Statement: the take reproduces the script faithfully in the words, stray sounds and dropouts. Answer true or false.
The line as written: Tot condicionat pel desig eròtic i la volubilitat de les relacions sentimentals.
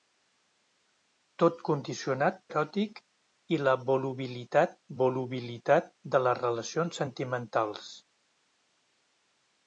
false